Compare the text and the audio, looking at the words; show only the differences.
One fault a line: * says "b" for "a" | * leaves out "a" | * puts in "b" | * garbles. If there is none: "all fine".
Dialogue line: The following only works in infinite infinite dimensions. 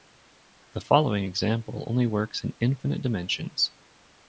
* puts in "example"
* leaves out "infinite"